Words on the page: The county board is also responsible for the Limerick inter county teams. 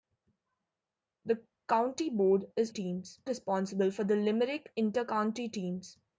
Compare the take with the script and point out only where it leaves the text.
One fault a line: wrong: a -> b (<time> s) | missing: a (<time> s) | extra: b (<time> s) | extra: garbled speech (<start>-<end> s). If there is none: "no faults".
wrong: also -> teams (2.7 s)